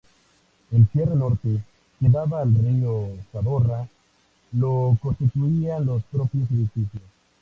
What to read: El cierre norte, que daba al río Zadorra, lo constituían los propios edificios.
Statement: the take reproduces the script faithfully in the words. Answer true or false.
true